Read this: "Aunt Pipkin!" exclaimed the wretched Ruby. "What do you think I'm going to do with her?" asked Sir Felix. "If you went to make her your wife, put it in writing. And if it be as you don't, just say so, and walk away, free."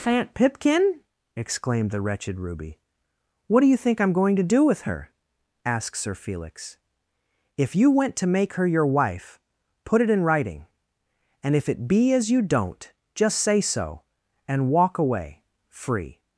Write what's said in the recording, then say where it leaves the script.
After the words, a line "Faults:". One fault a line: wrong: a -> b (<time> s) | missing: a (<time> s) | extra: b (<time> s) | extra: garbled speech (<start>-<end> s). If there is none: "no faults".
"Aunt Pipkin!" exclaimed the wretched Ruby. "What do you think I'm going to do with her?" asked Sir Felix. "If you went to make her your wife, put it in writing. And if it be as you don't, just say so, and walk away, free."
Faults:
no faults